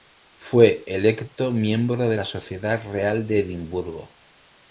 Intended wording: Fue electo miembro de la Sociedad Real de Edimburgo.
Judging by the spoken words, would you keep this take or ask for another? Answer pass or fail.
pass